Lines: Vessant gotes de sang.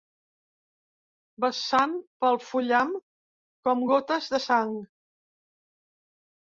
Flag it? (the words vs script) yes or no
yes